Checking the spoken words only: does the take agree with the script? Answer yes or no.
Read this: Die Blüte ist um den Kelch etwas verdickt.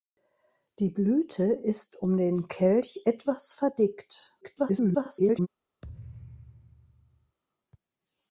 no